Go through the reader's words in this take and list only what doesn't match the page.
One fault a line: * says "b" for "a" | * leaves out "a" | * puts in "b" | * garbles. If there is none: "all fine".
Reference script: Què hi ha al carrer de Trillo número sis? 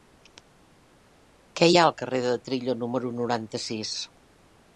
* puts in "noranta"